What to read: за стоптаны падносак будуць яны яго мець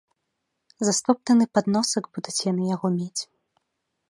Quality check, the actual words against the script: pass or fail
pass